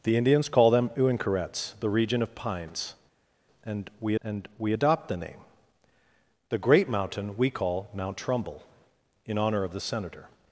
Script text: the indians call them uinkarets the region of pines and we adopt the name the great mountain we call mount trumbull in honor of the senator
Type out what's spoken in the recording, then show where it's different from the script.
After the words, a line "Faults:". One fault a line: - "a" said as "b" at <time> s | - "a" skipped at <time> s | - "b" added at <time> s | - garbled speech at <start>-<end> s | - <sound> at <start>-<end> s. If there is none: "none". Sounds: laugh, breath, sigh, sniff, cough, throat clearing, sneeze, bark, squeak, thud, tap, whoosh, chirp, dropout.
the indians call them uinkarets the region of pines and we and we adopt the name the great mountain we call mount trumbull in honor of the senator
Faults:
- "and we" added at 4.2 s